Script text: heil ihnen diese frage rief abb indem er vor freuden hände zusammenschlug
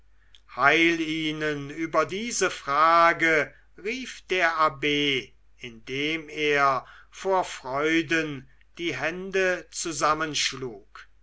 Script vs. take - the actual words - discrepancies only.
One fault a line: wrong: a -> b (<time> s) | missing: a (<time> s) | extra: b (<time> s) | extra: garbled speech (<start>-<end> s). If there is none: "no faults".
extra: über (1.7 s)
extra: der (4.3 s)
extra: die (8.8 s)